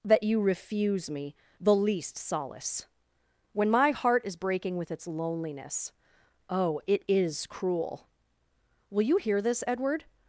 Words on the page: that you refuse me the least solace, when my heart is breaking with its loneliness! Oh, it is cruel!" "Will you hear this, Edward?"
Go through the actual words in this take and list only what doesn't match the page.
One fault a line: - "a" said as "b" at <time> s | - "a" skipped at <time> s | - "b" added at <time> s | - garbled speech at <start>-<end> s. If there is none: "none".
none